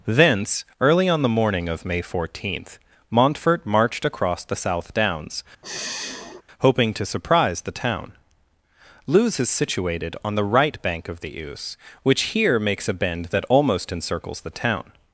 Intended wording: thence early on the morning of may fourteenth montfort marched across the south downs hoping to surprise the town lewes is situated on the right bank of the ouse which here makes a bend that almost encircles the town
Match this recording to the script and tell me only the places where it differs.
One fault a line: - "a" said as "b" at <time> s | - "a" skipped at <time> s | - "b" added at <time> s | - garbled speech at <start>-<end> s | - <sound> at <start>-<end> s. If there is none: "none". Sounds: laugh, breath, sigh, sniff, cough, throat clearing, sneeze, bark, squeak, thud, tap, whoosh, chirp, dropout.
- sigh at 5.6-6.4 s